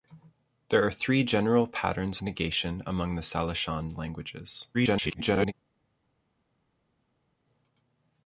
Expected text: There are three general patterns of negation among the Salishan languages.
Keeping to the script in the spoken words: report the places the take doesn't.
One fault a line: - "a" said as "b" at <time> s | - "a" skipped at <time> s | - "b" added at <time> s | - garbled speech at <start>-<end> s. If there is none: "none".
- "of" skipped at 2.2 s
- garbled speech at 4.7-5.5 s